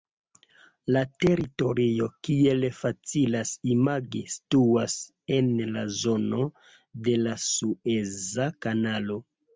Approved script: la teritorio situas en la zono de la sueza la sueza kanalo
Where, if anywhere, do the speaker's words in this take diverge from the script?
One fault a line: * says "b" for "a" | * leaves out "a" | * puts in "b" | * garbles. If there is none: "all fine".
* puts in "kiel facilas imagi"
* leaves out "la sueza"